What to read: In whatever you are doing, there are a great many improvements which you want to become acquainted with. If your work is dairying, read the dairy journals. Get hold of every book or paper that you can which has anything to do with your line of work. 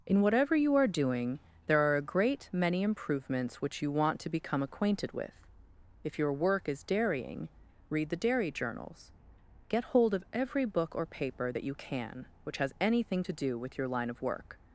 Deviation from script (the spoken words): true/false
false